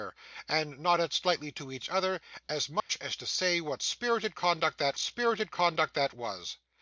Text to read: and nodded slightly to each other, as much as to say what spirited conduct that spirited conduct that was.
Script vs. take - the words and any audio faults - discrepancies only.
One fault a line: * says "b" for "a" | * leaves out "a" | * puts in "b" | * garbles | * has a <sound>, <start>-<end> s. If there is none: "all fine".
* has a dropout, 2.8-2.9 s